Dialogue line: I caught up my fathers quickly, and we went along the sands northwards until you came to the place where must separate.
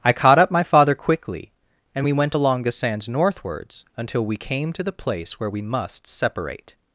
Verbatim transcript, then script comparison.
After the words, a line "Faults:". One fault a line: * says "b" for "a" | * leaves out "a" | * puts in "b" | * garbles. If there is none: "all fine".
I caught up my father quickly, and we went along the sands northwards until we came to the place where we must separate.
Faults:
* says "father" for "fathers"
* says "we" for "you"
* puts in "we"